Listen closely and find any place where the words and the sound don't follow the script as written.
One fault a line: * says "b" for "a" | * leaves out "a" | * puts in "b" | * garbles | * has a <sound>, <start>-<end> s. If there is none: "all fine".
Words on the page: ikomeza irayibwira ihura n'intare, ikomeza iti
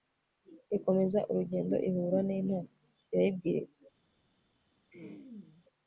* says "urugendo" for "irayibwira"
* says "irayibwira" for "ikomeza"
* has a throat clearing, 4.9-5.6 s